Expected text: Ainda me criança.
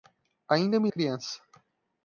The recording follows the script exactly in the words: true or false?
true